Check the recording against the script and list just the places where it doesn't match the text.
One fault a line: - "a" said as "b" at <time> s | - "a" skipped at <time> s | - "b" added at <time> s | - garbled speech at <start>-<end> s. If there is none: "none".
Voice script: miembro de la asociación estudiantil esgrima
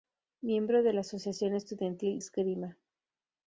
none